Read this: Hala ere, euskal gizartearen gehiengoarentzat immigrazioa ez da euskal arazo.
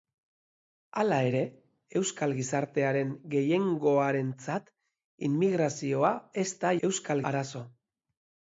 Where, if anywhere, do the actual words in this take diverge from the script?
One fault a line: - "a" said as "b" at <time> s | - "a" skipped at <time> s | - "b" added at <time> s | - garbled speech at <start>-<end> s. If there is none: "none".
none